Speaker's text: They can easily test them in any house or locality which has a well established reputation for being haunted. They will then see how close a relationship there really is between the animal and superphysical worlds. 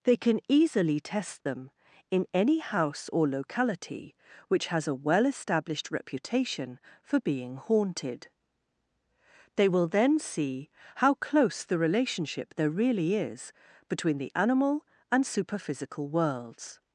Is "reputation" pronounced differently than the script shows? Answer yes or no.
no